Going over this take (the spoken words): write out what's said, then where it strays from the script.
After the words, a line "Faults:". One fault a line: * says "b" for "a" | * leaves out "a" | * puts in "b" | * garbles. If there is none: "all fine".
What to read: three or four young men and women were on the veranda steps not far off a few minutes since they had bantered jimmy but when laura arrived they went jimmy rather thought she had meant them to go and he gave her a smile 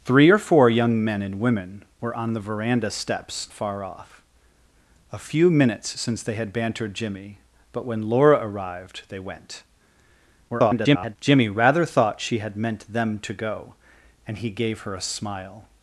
three or four young men and women were on the veranda steps far off a few minutes since they had bantered jimmy but when laura arrived they went [garbled] jimmy rather thought she had meant them to go and he gave her a smile
Faults:
* leaves out "not"
* garbles